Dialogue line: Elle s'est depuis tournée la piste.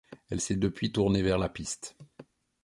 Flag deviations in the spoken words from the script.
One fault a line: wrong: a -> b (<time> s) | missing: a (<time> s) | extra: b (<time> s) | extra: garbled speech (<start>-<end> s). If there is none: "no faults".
extra: vers (1.2 s)